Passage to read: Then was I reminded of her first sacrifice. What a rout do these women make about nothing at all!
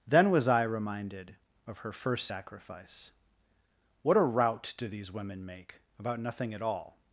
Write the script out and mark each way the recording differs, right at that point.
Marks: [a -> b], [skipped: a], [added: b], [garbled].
Then was I reminded of her first sacrifice. What a rout do these women make about nothing at all!